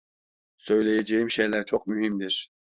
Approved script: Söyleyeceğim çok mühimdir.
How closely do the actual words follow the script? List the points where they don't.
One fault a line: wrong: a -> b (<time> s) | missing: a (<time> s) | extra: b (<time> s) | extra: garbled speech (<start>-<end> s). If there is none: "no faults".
extra: şeyler (1.3 s)